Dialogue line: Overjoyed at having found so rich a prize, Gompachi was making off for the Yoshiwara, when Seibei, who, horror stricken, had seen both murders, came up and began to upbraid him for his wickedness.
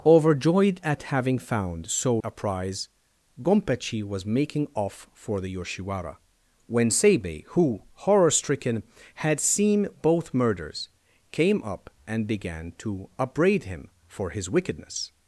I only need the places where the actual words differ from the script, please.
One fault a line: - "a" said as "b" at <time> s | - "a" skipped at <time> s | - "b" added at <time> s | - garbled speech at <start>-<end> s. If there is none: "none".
- "rich" skipped at 2.2 s